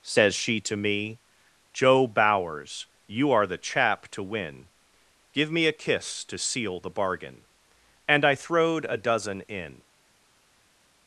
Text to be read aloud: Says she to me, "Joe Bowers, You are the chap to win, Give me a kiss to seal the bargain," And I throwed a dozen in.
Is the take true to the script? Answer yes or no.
yes